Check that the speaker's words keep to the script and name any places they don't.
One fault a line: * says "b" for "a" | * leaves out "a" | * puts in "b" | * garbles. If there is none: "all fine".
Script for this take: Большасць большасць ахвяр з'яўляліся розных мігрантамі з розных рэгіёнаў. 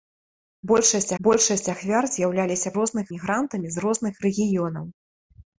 all fine